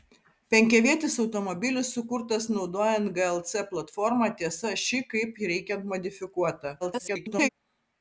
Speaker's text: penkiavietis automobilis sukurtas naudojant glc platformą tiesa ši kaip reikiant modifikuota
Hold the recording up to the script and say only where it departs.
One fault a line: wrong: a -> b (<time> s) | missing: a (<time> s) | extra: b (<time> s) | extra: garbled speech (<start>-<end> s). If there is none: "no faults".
extra: garbled speech (6.8-7.5 s)